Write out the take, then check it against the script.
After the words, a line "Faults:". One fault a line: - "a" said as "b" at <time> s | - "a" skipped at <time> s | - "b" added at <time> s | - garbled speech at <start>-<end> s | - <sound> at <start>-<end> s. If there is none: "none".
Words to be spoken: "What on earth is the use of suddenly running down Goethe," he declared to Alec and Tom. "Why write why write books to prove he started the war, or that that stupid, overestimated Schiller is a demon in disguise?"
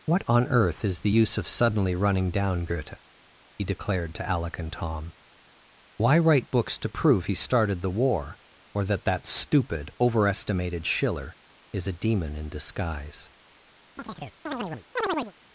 "What on earth is the use of suddenly running down Goethe," he declared to Alec and Tom. "Why write books to prove he started the war, or that that stupid, overestimated Schiller is a demon in disguise?"
Faults:
- "why write" skipped at 6.5 s
- chirp at 14.0-15.3 s